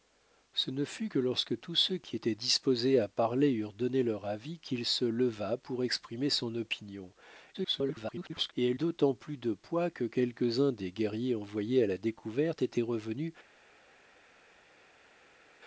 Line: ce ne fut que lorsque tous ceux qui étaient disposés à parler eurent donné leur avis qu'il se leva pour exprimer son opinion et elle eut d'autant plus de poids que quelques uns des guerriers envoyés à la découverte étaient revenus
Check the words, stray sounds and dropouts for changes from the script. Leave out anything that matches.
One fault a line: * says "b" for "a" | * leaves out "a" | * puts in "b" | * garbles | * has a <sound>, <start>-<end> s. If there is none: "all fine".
* garbles
* leaves out "eut"